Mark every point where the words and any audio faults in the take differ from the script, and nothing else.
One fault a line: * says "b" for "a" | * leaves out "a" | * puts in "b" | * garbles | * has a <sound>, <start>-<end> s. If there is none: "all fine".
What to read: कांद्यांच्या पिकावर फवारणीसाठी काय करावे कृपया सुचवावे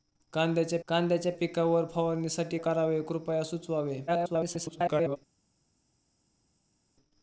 * puts in "कांद्यांच्या"
* leaves out "काय"
* garbles